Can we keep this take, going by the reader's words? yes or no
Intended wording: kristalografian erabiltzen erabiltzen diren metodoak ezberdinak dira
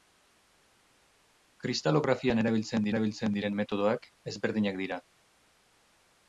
yes